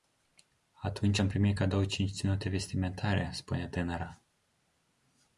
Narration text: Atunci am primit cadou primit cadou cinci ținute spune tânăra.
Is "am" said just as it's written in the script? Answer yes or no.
yes